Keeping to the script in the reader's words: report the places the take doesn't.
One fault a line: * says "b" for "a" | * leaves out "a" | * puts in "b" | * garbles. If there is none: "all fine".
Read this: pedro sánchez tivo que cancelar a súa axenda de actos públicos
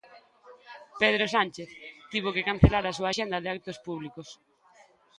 all fine